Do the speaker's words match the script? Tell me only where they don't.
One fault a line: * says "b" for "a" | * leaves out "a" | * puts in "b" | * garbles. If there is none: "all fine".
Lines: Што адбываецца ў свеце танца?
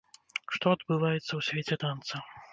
all fine